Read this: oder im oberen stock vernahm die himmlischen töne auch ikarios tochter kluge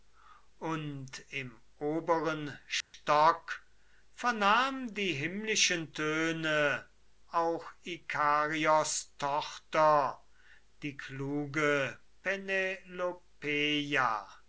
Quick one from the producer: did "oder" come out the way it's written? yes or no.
no